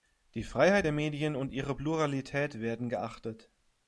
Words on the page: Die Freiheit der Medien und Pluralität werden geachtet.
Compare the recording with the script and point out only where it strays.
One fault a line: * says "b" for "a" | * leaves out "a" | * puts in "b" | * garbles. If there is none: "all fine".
* puts in "ihre"